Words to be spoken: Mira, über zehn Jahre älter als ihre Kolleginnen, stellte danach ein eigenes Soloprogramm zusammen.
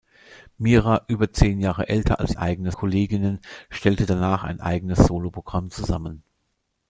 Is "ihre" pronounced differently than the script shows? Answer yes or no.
yes